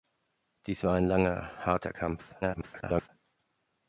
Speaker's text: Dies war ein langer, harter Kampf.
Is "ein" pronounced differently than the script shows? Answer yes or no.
no